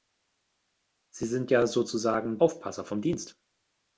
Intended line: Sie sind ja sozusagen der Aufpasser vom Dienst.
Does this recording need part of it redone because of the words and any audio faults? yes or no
yes